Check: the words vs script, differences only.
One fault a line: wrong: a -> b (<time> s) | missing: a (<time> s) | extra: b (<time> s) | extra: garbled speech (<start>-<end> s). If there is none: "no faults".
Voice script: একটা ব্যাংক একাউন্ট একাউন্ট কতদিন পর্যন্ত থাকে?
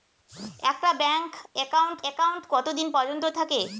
no faults